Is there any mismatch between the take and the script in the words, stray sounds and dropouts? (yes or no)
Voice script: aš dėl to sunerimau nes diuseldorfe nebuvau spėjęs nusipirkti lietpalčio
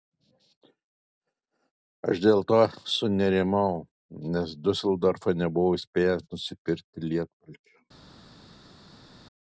no